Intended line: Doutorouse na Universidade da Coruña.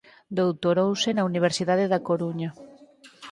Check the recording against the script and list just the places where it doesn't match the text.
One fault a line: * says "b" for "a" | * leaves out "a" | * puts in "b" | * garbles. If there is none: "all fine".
all fine